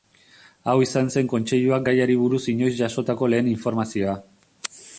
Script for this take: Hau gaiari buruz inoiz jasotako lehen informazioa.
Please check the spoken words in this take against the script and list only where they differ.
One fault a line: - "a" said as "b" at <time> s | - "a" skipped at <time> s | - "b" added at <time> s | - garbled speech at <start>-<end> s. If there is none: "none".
- "izan zen kontseiluak" added at 0.8 s